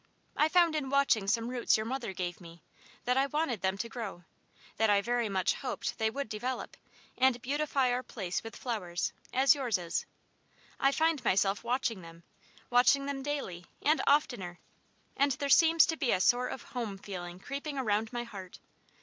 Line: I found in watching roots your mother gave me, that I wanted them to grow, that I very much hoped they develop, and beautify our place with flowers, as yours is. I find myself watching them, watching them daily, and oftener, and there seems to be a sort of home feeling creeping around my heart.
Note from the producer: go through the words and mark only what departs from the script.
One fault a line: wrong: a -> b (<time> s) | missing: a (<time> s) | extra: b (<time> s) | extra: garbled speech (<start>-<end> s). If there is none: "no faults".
extra: some (1.3 s)
extra: would (6.1 s)